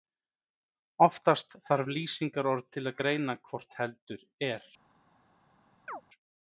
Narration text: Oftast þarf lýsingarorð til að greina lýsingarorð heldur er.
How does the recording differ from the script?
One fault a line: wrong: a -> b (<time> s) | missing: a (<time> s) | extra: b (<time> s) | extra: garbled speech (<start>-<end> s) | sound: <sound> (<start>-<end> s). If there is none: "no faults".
wrong: lýsingarorð -> hvort (3.5 s)
sound: chirp (5.9-6.0 s)